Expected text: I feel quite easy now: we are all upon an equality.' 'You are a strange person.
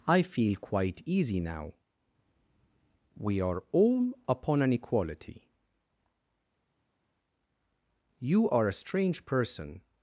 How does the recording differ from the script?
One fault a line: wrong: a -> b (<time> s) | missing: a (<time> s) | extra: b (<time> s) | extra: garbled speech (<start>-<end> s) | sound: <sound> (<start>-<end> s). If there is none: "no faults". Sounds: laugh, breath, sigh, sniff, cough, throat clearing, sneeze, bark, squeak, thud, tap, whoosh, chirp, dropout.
no faults